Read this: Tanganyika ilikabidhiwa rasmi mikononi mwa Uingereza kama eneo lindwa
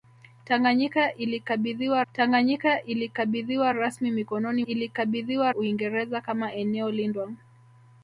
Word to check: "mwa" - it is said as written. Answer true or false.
false